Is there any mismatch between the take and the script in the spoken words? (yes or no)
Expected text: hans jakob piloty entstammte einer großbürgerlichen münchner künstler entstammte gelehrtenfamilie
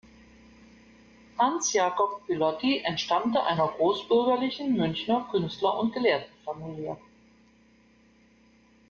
yes